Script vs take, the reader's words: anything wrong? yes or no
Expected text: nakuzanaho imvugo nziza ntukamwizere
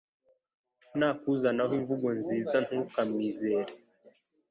no